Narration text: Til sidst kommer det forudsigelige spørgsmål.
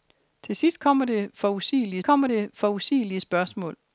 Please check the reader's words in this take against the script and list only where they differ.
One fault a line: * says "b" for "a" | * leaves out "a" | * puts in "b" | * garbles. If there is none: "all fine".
* puts in "kommer det forudsigelige"